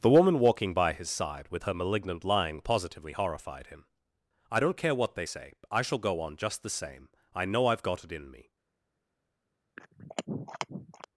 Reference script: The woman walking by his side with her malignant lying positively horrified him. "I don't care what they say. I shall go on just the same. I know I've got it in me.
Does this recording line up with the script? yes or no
yes